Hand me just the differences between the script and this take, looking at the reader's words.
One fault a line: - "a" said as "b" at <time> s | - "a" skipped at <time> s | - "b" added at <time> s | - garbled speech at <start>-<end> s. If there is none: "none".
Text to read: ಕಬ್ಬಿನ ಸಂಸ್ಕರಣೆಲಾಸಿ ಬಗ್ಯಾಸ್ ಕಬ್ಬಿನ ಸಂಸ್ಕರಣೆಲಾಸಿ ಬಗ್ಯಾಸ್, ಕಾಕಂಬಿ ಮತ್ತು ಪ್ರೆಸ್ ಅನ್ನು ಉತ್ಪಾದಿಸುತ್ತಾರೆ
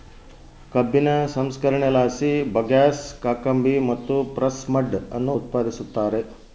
- "ಕಬ್ಬಿನ ಸಂಸ್ಕರಣೆಲಾಸಿ ಬಗ್ಯಾಸ್" skipped at 3.0 s
- "ಮಡ್" added at 4.7 s